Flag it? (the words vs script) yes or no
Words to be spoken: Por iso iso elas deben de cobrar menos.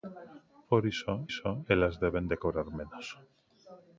no